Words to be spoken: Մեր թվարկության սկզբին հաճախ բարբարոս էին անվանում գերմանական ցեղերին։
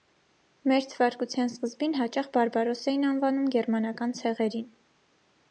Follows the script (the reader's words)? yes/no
yes